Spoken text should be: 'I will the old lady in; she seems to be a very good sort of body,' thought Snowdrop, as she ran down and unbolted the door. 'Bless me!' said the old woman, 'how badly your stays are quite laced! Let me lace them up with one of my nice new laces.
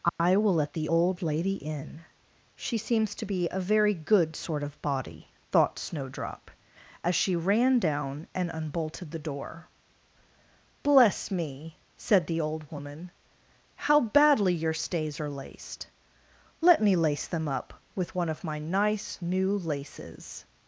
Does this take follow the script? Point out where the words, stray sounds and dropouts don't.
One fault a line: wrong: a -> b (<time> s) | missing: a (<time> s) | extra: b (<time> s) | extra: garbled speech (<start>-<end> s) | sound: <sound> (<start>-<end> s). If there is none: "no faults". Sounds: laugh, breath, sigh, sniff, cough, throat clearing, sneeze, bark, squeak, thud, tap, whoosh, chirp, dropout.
sound: dropout (0.1-0.2 s)
extra: let (0.6 s)
missing: quite (15.3 s)